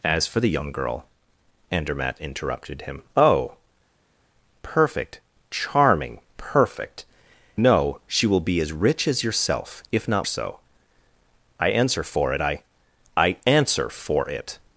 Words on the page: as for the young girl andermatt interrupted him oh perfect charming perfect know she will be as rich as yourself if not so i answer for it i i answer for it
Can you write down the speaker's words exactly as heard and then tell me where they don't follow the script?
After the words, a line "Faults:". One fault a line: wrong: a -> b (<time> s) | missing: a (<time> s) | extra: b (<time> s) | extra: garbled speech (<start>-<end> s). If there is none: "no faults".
as for the young girl andermatt interrupted him oh perfect charming perfect know she will be as rich as yourself if not so i answer for it i i answer for it
Faults:
no faults